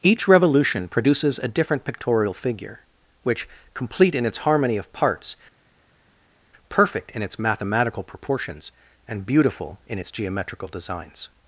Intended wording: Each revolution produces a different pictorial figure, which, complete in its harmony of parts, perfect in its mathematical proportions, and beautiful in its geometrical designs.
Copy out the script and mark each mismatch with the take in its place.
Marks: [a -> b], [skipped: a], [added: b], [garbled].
Each revolution produces a different pictorial figure, which, complete in its harmony of parts, perfect in its mathematical proportions, and beautiful in its geometrical designs.